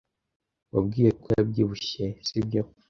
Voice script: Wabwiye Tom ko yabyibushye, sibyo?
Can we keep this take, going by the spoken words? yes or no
no